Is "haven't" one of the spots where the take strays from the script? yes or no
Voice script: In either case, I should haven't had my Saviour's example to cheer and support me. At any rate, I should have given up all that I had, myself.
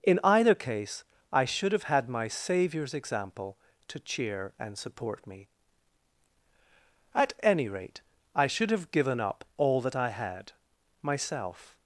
yes